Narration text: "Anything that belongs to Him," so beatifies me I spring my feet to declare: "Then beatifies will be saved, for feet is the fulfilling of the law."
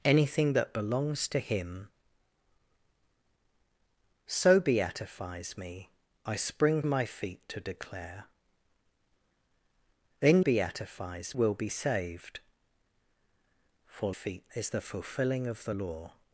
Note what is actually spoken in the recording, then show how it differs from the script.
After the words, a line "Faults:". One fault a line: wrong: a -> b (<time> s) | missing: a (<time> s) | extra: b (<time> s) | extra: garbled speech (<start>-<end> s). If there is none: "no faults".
"Anything that belongs to Him," so beatifies me I spring my feet to declare: "Then beatifies will be saved, for feet is the fulfilling of the law."
Faults:
no faults